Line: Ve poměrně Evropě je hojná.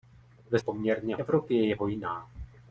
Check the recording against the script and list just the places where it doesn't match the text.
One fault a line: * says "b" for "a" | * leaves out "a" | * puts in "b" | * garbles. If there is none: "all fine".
all fine